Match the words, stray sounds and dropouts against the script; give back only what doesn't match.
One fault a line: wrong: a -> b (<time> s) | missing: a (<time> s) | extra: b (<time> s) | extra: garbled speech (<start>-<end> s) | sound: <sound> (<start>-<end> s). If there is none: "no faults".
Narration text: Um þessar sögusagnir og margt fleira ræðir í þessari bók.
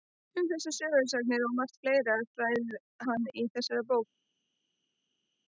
extra: hann (3.1 s)